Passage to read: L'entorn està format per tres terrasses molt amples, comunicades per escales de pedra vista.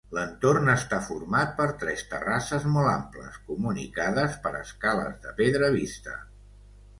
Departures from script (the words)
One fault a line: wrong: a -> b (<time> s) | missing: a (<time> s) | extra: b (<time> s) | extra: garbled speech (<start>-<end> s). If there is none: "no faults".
no faults